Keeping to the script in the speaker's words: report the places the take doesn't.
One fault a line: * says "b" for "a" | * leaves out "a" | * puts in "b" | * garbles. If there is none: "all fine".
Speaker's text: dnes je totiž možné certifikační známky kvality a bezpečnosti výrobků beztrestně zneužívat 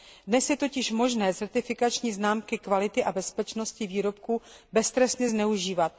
all fine